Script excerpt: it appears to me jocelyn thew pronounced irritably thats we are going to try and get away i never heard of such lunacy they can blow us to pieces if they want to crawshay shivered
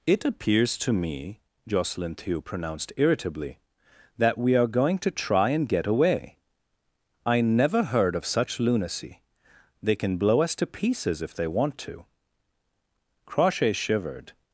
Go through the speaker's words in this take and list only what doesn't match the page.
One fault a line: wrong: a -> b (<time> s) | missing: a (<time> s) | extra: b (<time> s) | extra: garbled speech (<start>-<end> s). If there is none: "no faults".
wrong: thats -> that (4.2 s)